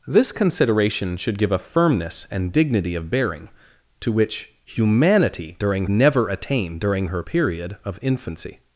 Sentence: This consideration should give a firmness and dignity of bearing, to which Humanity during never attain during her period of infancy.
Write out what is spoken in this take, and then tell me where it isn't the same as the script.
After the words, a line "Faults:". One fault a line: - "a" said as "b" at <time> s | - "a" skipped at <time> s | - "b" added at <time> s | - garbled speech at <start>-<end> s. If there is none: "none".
This consideration should give a firmness and dignity of bearing, to which Humanity during never attain during her period of infancy.
Faults:
none